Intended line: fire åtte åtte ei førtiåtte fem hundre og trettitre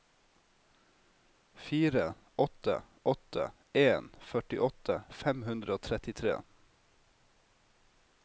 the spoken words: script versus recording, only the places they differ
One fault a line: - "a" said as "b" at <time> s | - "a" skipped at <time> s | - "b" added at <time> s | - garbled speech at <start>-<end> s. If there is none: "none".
- "ei" said as "en" at 3.7 s